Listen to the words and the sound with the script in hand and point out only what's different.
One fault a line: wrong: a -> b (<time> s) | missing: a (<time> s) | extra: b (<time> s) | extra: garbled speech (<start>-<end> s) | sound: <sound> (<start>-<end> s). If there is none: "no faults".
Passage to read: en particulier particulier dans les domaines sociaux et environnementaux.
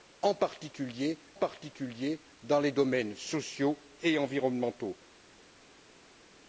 no faults